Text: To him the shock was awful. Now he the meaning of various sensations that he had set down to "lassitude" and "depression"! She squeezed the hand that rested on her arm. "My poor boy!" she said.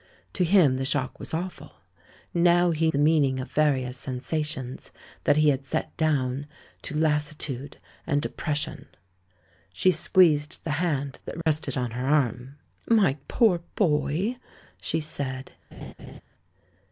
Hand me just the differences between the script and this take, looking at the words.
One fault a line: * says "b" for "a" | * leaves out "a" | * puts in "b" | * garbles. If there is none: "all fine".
all fine